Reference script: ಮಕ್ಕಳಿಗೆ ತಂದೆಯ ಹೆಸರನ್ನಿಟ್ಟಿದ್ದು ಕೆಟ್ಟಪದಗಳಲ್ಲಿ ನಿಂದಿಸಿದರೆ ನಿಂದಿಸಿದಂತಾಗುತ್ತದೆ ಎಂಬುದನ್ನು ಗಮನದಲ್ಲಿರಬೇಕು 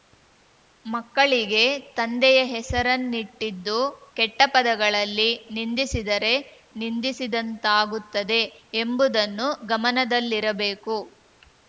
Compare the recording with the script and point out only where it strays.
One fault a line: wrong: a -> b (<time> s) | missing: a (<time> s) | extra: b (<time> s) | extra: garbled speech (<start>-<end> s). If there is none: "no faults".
no faults